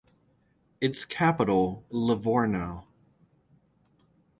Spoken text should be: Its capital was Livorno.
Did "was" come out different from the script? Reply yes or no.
yes